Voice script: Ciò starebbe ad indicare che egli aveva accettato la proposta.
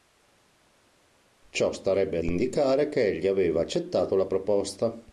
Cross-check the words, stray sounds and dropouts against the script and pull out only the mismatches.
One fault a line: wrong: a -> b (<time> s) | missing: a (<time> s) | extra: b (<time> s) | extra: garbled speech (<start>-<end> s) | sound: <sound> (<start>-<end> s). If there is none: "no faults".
missing: ad (2.2 s)